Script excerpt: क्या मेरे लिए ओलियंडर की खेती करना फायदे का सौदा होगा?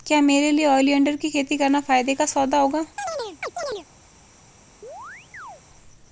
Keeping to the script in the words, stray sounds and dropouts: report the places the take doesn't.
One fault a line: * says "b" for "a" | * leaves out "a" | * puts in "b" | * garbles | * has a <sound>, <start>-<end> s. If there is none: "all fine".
* has a chirp, 3.0-3.9 s
* has a chirp, 4.8-5.6 s